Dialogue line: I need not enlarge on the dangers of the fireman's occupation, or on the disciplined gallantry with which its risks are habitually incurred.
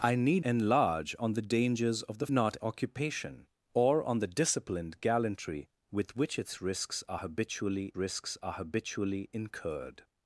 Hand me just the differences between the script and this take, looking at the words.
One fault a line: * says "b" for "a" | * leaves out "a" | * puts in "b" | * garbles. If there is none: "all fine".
* leaves out "not"
* says "not" for "fireman's"
* puts in "risks are habitually"